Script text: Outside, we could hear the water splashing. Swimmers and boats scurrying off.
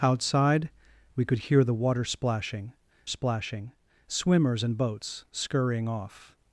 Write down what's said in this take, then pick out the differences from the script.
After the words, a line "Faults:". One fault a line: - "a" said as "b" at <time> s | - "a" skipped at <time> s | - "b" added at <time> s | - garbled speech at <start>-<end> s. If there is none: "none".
Outside, we could hear the water splashing splashing. Swimmers and boats scurrying off.
Faults:
- "splashing" added at 3.0 s